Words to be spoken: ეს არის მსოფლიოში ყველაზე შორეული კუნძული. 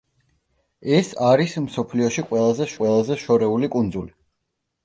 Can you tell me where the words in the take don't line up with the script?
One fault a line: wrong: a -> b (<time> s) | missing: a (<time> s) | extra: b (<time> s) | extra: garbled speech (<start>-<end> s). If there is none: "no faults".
extra: ყველაზე (2.8 s)